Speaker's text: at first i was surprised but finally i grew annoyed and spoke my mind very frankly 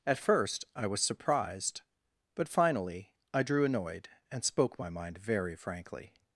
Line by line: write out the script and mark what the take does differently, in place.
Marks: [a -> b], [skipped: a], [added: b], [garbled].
at first i was surprised but finally i [grew -> drew] annoyed and spoke my mind very frankly